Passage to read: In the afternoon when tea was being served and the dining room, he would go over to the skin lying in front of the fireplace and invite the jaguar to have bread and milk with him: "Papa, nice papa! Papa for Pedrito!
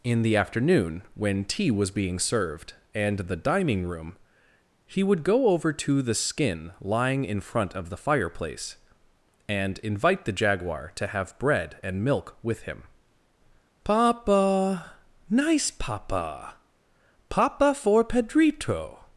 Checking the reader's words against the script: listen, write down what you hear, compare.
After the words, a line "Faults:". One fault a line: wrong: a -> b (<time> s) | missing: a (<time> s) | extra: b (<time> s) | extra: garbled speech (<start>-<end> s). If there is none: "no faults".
In the afternoon when tea was being served and the dining room, he would go over to the skin lying in front of the fireplace and invite the jaguar to have bread and milk with him: "Papa, nice papa! Papa for Pedrito!
Faults:
no faults